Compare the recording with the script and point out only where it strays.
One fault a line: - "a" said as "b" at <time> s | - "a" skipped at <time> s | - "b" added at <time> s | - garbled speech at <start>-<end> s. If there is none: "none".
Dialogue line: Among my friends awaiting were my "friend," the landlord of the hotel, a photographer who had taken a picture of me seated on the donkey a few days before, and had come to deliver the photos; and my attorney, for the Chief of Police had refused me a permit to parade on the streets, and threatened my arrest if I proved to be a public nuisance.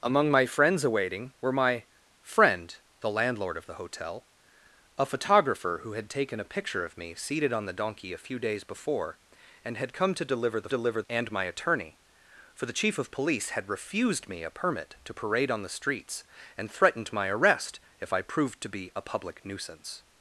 - "photos" said as "deliver" at 10.7 s